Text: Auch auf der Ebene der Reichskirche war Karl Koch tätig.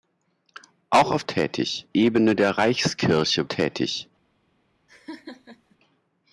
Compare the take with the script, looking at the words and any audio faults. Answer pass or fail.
fail